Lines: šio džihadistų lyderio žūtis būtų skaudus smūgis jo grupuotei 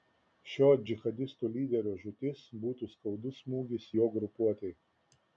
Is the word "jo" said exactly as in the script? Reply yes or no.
yes